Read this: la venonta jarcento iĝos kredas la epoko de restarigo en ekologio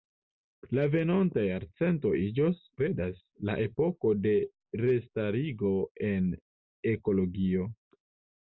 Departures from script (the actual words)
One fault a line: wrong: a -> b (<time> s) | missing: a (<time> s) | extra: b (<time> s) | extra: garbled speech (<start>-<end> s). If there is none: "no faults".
no faults